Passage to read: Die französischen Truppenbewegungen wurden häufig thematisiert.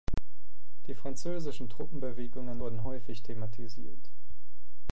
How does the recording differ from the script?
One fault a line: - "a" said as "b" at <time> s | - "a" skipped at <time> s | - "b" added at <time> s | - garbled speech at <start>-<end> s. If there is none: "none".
none